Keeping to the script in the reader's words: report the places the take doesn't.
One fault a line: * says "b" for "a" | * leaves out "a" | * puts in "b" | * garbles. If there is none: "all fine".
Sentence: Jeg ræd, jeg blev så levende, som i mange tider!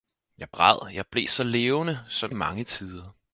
all fine